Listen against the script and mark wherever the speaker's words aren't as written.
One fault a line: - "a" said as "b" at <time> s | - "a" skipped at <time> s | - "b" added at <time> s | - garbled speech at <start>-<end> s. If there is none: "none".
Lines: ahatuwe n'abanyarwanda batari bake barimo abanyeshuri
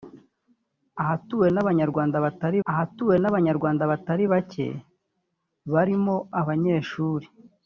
- "ahatuwe n'abanyarwanda batari" added at 2.7 s